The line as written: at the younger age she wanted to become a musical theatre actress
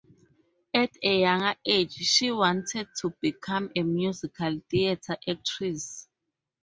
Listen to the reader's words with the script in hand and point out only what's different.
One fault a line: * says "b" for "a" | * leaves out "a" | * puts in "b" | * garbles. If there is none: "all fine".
* says "a" for "the"